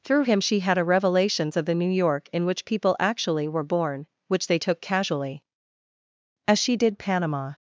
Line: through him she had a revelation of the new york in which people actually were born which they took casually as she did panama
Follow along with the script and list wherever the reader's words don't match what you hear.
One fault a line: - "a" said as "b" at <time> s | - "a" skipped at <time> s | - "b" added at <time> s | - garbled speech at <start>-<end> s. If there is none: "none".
- "revelation" said as "revelations" at 0.8 s